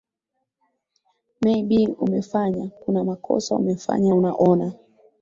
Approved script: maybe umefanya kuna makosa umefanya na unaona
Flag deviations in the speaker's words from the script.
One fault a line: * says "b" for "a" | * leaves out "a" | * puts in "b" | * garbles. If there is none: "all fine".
* leaves out "na"